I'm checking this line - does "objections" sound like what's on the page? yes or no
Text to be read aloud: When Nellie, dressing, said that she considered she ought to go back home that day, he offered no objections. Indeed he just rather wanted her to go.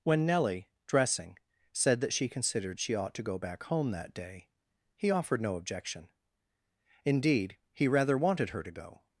no